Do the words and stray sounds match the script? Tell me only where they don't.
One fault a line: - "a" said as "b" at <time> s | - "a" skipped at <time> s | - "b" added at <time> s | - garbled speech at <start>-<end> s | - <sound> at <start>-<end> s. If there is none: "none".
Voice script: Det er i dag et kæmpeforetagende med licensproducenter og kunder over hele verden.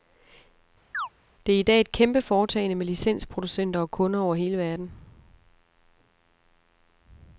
- chirp at 0.9-1.1 s